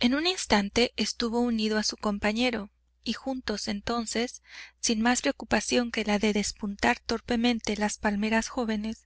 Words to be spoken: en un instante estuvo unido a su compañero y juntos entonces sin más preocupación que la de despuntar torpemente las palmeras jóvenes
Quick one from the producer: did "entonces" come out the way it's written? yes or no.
yes